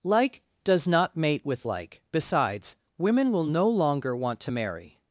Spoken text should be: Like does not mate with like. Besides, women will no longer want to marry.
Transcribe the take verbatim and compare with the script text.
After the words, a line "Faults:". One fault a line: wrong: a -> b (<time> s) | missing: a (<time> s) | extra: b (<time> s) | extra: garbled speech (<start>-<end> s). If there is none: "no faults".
Like does not mate with like. Besides, women will no longer want to marry.
Faults:
no faults